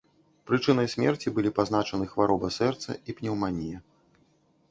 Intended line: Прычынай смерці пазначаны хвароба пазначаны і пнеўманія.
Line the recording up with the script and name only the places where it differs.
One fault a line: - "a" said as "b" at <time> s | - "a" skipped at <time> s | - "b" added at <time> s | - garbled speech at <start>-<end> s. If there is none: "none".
- "былі" added at 1.4 s
- "пазначаны" said as "сэрца" at 2.6 s